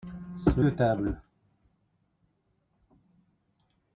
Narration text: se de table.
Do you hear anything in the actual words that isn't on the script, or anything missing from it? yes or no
no